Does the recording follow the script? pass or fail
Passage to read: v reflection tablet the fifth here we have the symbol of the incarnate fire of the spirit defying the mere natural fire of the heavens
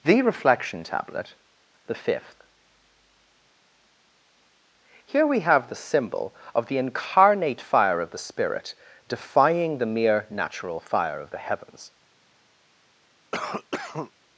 fail